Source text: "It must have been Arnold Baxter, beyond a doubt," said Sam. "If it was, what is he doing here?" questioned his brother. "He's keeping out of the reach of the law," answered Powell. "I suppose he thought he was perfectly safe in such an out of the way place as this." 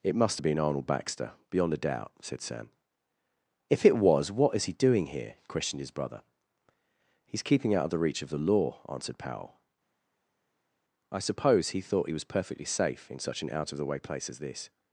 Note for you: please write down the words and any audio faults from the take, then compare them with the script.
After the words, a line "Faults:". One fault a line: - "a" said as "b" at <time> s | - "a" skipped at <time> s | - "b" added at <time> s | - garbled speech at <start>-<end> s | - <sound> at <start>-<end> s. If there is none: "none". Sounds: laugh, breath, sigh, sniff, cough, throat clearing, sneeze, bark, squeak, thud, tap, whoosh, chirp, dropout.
"It must have been Arnold Baxter, beyond a doubt," said Sam. "If it was, what is he doing here?" questioned his brother. "He's keeping out of the reach of the law," answered Powell. "I suppose he thought he was perfectly safe in such an out of the way place as this."
Faults:
none